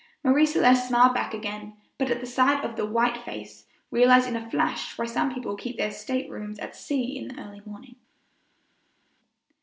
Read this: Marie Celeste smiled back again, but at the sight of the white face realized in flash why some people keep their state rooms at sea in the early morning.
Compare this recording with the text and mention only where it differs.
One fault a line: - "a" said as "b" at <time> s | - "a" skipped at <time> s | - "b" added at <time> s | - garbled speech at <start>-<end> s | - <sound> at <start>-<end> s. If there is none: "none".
- "a" added at 4.3 s